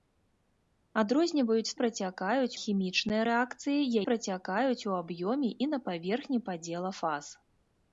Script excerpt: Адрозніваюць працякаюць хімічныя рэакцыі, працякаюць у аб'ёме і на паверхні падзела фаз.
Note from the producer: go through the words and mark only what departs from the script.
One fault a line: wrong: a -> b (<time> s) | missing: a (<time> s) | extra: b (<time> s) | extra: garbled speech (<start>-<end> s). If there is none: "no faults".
no faults